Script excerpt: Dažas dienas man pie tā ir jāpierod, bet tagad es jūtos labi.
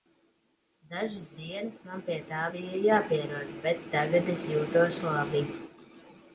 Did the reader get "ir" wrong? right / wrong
wrong